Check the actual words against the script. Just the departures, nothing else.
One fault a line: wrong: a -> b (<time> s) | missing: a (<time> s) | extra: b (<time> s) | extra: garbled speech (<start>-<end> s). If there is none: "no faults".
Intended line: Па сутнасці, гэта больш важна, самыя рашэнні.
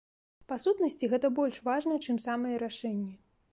extra: чым (2.1 s)